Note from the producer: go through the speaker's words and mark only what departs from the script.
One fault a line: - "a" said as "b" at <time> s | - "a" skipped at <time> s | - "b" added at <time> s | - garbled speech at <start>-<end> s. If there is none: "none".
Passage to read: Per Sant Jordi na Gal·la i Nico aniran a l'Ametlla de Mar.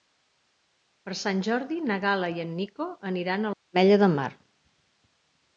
- "en" added at 2.5 s